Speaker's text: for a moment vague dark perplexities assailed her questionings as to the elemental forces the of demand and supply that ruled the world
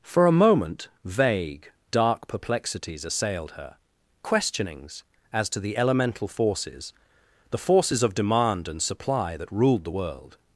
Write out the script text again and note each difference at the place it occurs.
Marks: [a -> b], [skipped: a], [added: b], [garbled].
for a moment vague dark perplexities assailed her questionings as to the elemental forces the [added: forces] of demand and supply that ruled the world